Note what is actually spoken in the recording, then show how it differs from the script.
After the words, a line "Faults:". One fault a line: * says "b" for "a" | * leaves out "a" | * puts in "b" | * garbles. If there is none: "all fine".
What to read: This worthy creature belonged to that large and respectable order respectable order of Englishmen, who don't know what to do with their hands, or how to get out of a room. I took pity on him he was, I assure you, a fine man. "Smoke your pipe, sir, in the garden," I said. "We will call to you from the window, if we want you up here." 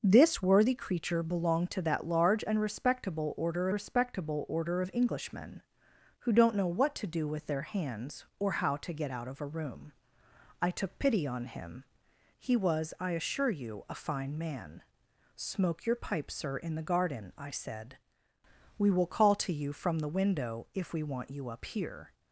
This worthy creature belonged to that large and respectable order respectable order of Englishmen, who don't know what to do with their hands, or how to get out of a room. I took pity on him he was, I assure you, a fine man. "Smoke your pipe, sir, in the garden," I said. "We will call to you from the window, if we want you up here."
Faults:
all fine